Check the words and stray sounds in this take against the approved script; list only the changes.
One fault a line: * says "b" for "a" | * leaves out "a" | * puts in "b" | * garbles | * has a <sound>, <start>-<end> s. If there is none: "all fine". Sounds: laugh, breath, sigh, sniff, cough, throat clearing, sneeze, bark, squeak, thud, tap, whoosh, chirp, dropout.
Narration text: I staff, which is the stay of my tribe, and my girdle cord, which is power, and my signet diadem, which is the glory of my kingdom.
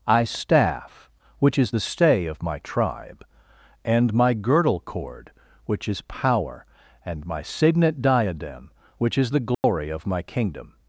* has a dropout, 9.5-9.6 s